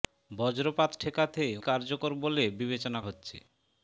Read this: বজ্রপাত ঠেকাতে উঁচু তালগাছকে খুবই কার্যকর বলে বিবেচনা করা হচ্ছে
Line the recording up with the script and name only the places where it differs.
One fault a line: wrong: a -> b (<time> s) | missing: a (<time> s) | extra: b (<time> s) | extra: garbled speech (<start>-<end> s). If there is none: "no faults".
missing: উঁচু তালগাছকে খুবই (1.4 s)
missing: করা (3.0 s)